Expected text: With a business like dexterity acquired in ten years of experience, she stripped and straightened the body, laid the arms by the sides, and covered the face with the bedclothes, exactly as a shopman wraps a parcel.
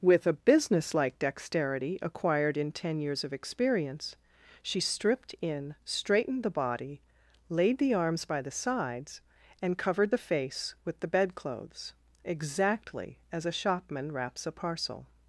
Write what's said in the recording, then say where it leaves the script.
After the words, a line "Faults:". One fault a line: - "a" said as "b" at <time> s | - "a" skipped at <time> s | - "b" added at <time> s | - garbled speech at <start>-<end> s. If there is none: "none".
With a business like dexterity acquired in ten years of experience, she stripped in straightened the body, laid the arms by the sides, and covered the face with the bedclothes, exactly as a shopman wraps a parcel.
Faults:
- "and" said as "in" at 5.4 s